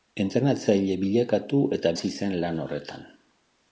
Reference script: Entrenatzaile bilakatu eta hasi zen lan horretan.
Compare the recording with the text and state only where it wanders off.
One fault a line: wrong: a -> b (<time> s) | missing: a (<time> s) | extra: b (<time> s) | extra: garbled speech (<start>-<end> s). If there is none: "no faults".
no faults